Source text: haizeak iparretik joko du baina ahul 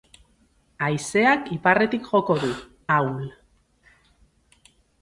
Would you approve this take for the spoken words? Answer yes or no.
no